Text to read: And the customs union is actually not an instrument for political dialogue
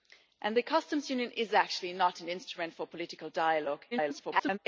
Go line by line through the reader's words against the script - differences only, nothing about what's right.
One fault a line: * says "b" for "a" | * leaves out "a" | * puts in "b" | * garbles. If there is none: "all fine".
* garbles